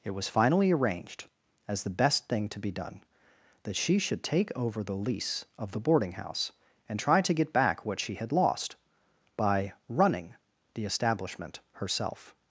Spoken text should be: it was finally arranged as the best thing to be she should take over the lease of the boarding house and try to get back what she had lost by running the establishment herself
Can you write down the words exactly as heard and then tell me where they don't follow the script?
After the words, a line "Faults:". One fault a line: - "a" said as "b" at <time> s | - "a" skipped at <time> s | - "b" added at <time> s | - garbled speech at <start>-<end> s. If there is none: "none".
it was finally arranged as the best thing to be done that she should take over the lease of the boarding house and try to get back what she had lost by running the establishment herself
Faults:
- "done that" added at 2.7 s